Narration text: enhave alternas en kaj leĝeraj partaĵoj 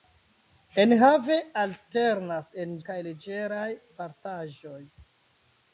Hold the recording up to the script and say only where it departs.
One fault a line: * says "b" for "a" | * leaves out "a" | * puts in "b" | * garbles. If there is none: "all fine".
all fine